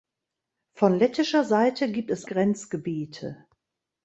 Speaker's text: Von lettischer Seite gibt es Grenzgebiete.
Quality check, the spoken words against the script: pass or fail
pass